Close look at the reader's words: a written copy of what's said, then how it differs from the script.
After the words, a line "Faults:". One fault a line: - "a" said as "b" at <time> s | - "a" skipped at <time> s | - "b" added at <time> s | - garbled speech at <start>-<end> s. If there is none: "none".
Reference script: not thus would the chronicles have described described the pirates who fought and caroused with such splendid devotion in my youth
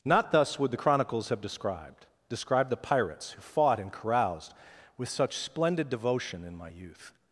not thus would the chronicles have described described the pirates who fought and caroused with such splendid devotion in my youth
Faults:
none